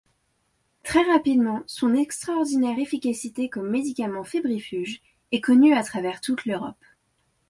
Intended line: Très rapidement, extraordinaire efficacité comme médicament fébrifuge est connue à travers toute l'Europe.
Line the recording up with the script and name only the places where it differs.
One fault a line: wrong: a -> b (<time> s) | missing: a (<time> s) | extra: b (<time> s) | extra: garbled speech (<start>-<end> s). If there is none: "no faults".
extra: son (1.7 s)